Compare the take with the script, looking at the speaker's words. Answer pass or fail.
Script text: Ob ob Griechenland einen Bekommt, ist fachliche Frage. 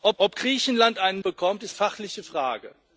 pass